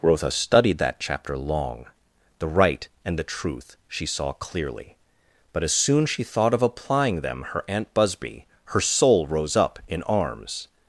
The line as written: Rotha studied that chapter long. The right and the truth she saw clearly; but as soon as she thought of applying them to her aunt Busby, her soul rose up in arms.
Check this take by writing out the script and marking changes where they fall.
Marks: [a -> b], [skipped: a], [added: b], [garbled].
Rotha studied that chapter long. The right and the truth she saw clearly; but as soon [skipped: as] she thought of applying them [skipped: to] her aunt Busby, her soul rose up in arms.